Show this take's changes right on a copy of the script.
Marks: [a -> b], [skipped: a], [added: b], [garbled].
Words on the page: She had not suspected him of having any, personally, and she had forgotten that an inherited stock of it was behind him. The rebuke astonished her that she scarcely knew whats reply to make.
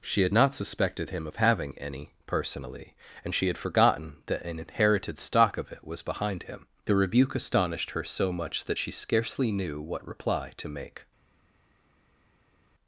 She had not suspected him of having any, personally, and she had forgotten that an inherited stock of it was behind him. The rebuke astonished her [added: so much] that she scarcely knew [whats -> what] reply to make.